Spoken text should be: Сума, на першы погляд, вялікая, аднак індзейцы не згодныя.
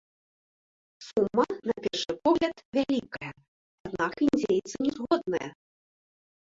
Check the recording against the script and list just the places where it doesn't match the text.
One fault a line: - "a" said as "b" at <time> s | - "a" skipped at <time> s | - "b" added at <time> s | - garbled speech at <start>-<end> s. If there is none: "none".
none